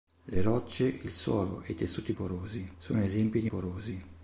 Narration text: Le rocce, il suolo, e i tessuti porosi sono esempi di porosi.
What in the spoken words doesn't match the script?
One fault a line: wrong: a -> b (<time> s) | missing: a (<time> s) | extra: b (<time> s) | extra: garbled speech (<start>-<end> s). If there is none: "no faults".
no faults